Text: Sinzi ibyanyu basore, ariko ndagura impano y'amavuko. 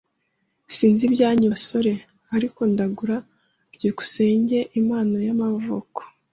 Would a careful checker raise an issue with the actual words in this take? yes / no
yes